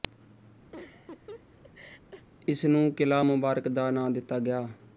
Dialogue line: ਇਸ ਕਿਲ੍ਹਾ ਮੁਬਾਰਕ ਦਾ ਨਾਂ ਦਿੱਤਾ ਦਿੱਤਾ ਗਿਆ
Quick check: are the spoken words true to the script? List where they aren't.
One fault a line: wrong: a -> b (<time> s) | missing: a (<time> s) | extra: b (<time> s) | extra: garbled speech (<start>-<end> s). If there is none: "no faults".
extra: ਨੂੰ (2.7 s)
missing: ਦਿੱਤਾ (4.4 s)